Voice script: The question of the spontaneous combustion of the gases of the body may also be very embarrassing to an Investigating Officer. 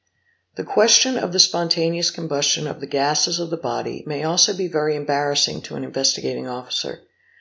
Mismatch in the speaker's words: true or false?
false